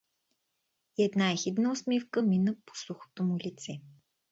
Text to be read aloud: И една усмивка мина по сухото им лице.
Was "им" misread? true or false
true